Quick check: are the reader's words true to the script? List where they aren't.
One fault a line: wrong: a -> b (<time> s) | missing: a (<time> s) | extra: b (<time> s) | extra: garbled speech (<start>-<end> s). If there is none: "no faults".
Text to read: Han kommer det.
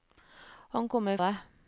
no faults